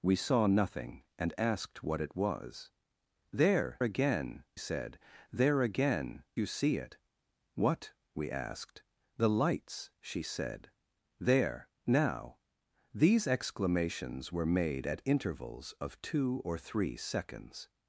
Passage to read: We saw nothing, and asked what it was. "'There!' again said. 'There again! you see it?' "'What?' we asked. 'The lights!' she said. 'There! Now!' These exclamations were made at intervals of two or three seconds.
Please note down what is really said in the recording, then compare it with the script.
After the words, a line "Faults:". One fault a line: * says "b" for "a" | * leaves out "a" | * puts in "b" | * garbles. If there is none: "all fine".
We saw nothing, and asked what it was. "'There!' again said. 'There again! you see it?' "'What?' we asked. 'The lights!' she said. 'There! Now!' These exclamations were made at intervals of two or three seconds.
Faults:
all fine